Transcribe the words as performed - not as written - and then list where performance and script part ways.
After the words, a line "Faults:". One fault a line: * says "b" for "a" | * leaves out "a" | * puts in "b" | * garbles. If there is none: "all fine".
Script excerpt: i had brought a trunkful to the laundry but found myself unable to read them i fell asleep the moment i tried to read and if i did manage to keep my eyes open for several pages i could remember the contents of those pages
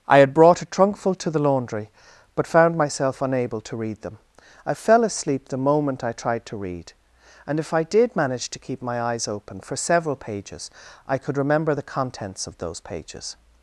i had brought a trunkful to the laundry but found myself unable to read them i fell asleep the moment i tried to read and if i did manage to keep my eyes open for several pages i could remember the contents of those pages
Faults:
all fine